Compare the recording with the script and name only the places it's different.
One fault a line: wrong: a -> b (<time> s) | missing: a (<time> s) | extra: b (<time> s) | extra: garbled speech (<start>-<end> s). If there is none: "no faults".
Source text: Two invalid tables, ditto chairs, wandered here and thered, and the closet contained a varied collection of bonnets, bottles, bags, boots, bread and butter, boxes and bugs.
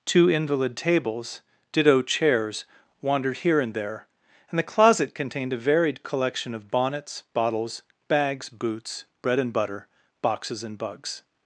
wrong: thered -> there (3.7 s)